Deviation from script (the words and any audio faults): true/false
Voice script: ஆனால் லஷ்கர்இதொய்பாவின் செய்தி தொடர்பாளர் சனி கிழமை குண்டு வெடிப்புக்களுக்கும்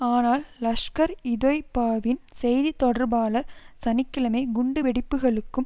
false